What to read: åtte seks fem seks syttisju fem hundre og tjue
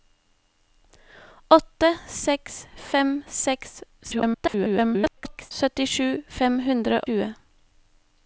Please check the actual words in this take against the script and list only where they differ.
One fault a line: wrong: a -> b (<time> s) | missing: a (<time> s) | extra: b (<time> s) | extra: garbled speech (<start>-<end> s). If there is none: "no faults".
extra: garbled speech (4.0-5.5 s)
missing: og (7.0 s)